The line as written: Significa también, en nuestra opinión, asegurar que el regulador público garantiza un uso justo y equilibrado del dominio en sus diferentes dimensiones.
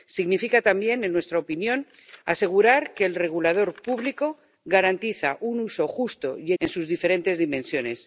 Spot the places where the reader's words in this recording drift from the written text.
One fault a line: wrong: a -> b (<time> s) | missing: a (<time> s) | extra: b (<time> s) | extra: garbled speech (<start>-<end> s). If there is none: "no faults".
missing: equilibrado del dominio (6.5 s)